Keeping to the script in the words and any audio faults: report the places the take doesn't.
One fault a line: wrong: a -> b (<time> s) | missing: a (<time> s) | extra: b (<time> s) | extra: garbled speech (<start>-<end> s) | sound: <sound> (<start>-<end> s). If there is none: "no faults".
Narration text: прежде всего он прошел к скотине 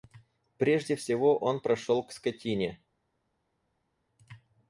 no faults